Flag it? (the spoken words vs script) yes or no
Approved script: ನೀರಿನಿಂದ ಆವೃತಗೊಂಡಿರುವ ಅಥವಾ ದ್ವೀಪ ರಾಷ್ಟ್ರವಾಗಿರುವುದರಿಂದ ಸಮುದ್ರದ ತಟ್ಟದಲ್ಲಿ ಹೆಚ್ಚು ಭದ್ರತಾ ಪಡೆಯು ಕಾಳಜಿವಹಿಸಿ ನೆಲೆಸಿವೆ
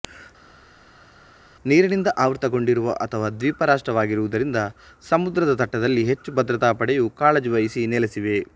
no